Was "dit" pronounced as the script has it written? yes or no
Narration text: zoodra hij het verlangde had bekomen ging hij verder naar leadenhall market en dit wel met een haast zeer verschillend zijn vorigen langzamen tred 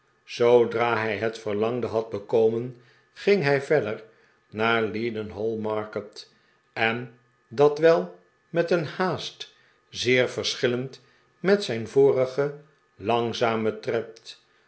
no